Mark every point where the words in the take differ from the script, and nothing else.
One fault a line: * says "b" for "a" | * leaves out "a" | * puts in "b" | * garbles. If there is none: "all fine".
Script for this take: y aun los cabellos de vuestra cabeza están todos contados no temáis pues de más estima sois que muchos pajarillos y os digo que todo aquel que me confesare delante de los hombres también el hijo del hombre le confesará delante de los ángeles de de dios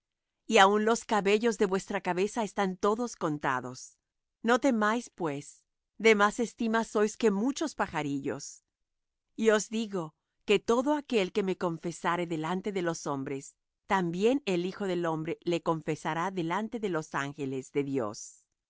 * leaves out "de"